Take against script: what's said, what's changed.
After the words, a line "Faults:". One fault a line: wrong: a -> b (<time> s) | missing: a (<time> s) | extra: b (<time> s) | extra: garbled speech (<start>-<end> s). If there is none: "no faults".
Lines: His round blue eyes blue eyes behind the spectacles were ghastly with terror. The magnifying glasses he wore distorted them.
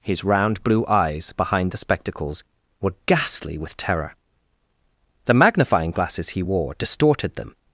His round blue eyes behind the spectacles were ghastly with terror. The magnifying glasses he wore distorted them.
Faults:
missing: blue eyes (1.3 s)